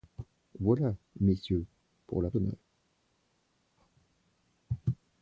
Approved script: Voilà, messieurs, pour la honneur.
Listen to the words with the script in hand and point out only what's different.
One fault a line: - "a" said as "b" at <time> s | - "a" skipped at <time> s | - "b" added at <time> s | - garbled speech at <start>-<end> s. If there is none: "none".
none